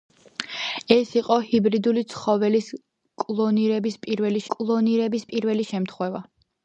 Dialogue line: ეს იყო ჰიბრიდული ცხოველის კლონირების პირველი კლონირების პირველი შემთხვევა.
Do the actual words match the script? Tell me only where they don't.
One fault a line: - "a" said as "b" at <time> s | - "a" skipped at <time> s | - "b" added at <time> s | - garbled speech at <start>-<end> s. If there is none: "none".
none